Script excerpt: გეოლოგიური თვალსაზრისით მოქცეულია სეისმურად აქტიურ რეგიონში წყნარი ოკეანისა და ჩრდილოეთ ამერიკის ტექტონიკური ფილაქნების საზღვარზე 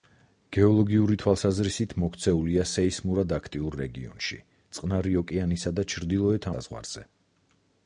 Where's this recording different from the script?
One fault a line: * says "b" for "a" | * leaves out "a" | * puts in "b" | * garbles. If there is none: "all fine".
* leaves out "ამერიკის ტექტონიკური ფილაქნების"